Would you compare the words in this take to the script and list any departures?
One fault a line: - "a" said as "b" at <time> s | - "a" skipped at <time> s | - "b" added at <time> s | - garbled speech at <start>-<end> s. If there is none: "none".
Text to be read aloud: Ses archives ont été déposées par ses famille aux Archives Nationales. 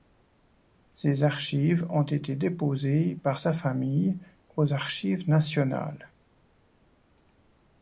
- "ses" said as "sa" at 3.4 s